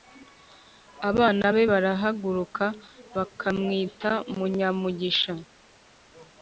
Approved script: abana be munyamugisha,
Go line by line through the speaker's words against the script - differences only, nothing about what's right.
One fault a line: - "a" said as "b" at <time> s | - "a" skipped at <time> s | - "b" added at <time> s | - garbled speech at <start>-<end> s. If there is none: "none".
- "barahaguruka bakamwita" added at 1.7 s